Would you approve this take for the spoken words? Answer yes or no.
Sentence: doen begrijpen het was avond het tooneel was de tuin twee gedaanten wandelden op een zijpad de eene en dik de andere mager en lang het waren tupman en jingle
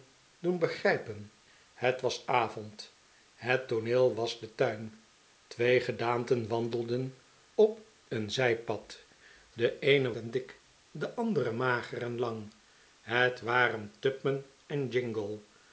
yes